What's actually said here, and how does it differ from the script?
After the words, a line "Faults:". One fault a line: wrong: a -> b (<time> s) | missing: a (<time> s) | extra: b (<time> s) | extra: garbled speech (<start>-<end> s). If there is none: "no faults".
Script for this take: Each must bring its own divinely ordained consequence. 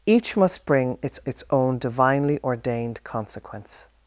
Each must bring its its own divinely ordained consequence.
Faults:
extra: its (1.2 s)